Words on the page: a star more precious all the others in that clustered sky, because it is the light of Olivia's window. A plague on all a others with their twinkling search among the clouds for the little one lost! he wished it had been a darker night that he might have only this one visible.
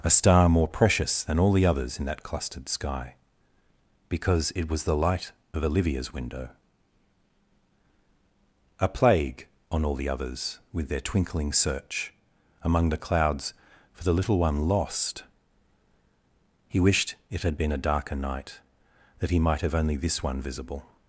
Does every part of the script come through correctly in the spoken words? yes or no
no